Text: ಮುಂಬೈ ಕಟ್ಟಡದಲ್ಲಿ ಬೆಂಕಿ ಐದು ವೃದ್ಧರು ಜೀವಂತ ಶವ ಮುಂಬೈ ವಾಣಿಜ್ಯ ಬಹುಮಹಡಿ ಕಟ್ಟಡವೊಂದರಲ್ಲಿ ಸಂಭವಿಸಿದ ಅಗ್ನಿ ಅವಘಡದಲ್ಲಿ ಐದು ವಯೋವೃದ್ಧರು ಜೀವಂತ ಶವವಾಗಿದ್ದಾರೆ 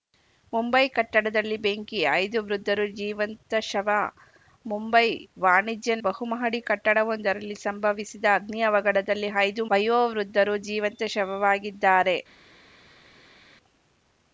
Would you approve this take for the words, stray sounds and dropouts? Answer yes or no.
yes